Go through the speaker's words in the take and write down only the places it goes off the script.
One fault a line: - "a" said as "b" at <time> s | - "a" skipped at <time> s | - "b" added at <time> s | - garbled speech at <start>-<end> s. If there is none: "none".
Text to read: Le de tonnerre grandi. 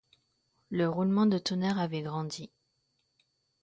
- "roulement" added at 0.9 s
- "avait" added at 1.8 s